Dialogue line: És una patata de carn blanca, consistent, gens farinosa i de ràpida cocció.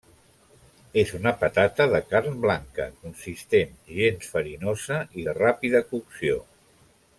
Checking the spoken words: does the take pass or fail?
pass